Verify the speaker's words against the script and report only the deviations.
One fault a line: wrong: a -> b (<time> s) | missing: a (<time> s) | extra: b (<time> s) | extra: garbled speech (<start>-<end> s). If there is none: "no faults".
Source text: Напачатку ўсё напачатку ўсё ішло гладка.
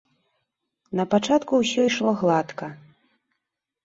missing: напачатку ўсё (1.8 s)